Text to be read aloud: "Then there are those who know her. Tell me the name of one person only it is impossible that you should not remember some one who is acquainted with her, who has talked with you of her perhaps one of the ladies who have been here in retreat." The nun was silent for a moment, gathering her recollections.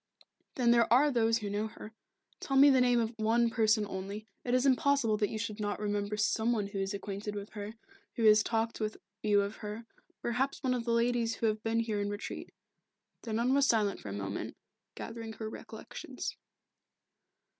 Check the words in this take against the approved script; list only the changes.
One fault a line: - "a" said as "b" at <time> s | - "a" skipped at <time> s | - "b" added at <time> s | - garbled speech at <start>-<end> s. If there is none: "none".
none